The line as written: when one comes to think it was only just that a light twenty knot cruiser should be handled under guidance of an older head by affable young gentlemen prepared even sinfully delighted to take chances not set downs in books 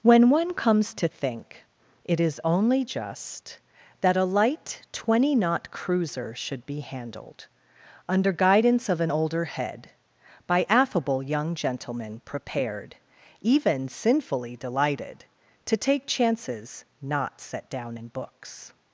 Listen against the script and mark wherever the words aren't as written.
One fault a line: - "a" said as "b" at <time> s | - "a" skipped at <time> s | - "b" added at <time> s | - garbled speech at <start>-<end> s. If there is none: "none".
- "was" said as "is" at 2.2 s
- "downs" said as "down" at 17.7 s